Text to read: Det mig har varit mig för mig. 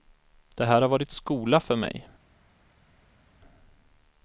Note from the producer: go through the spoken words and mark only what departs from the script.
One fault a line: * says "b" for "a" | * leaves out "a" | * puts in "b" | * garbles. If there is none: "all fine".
* says "här" for "mig"
* says "skola" for "mig"